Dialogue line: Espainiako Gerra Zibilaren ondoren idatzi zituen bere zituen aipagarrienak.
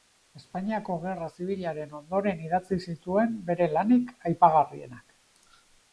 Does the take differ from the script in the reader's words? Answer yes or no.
yes